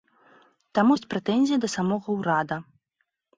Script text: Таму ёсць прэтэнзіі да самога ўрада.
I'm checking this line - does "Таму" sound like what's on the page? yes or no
yes